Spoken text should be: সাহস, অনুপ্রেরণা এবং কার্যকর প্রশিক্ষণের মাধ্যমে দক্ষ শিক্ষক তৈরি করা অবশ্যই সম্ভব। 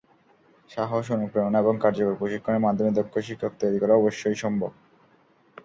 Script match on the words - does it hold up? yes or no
yes